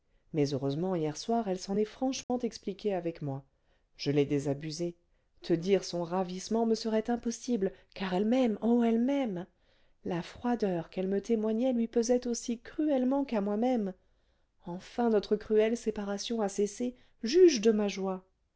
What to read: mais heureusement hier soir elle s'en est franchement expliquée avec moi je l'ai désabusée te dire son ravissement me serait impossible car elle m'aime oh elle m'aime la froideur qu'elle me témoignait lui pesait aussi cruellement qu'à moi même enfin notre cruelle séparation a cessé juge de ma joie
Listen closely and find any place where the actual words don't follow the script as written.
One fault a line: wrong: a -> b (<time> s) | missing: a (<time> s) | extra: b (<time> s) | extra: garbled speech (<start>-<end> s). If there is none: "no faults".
no faults